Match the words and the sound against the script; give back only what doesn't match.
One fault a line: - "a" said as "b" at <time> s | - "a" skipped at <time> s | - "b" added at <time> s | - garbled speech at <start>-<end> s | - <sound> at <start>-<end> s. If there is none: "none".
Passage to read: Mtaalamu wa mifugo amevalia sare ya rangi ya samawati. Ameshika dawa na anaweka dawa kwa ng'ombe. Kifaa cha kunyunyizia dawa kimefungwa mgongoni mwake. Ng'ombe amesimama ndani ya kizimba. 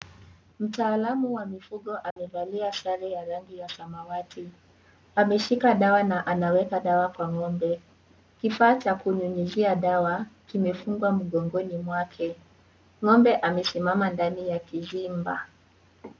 - dropout at 2.1-2.2 s